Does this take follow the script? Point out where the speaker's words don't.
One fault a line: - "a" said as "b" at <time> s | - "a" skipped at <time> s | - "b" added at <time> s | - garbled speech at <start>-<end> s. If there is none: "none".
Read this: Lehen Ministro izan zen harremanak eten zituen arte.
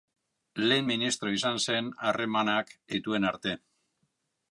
- "eten" skipped at 2.7 s